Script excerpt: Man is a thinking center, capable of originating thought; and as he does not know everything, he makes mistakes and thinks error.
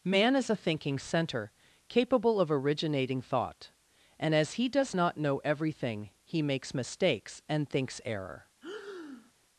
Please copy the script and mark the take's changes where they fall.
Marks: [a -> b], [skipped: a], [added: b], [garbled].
Man is a thinking center, capable of originating thought; and as he does not know everything, he makes mistakes and thinks error.